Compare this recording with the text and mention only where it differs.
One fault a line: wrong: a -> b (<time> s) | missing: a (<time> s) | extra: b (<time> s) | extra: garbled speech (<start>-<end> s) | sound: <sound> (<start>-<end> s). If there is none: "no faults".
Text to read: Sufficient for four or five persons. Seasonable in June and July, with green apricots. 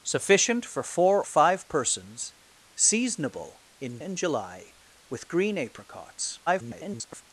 missing: or (1.2 s)
missing: June (4.0 s)
extra: garbled speech (6.5-7.2 s)